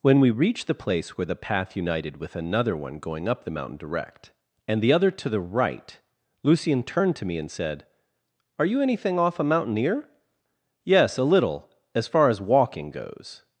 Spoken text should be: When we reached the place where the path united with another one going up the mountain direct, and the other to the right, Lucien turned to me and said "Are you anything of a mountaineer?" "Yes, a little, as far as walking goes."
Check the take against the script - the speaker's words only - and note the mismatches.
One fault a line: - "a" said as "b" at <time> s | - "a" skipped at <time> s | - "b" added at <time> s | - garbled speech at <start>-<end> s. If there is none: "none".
- "of" said as "off" at 9.2 s